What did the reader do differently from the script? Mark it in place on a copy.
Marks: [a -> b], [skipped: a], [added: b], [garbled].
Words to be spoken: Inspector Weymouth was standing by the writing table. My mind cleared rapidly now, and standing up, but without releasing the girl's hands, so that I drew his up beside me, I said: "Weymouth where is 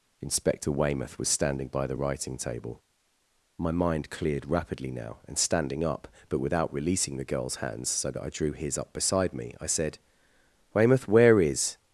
Inspector Weymouth was standing by the writing table. My mind cleared rapidly now, and standing up, but without releasing the girl's hands, so that I drew his up beside me, I said: "Weymouth where is